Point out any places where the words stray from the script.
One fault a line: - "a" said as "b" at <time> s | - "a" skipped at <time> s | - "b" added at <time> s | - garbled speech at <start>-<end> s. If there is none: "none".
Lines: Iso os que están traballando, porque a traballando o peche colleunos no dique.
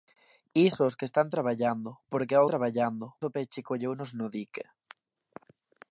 none